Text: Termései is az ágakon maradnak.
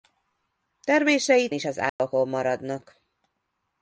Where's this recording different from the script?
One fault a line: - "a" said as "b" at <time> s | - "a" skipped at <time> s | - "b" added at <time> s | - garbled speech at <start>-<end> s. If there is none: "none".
none